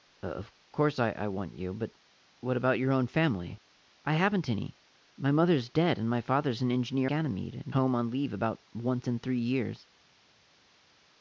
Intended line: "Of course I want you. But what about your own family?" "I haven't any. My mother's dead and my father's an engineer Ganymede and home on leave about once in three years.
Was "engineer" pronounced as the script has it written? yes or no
yes